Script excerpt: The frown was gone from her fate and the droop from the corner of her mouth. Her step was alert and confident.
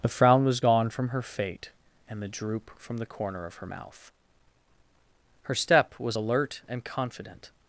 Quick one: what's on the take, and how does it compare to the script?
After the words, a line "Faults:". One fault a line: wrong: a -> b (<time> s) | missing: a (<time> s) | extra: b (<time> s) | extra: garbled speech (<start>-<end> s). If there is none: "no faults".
The frown was gone from her fate and the droop from the corner of her mouth. Her step was alert and confident.
Faults:
no faults